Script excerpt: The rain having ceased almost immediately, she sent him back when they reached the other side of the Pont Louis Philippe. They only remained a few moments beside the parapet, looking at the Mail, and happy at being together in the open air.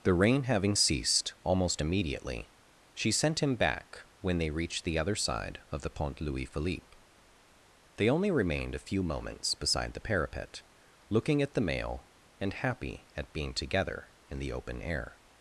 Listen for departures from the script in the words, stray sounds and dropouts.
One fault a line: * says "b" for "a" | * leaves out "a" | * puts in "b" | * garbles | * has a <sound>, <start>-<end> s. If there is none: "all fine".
all fine